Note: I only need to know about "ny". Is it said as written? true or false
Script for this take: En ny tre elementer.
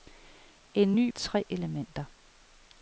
true